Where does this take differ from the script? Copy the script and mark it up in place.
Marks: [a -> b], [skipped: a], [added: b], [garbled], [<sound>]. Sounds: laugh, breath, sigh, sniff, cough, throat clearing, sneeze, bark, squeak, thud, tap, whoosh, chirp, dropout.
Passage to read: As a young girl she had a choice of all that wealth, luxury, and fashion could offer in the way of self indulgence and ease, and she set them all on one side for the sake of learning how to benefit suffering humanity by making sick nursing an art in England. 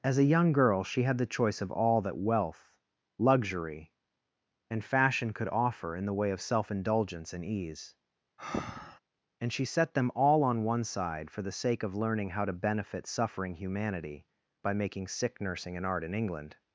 As a young girl she had [a -> the] choice of all that wealth, luxury, and fashion could offer in the way of self indulgence and ease, [breath] and she set them all on one side for the sake of learning how to benefit suffering humanity by making sick nursing an art in England.